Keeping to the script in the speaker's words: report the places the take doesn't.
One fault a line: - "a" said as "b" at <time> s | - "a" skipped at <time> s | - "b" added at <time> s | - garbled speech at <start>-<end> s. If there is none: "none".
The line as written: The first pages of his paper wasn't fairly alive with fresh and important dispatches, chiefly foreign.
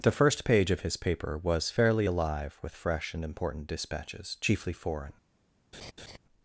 - "pages" said as "page" at 0.5 s
- "wasn't" said as "was" at 1.4 s